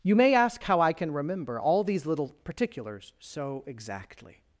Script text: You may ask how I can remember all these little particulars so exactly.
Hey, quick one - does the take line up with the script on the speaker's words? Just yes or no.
yes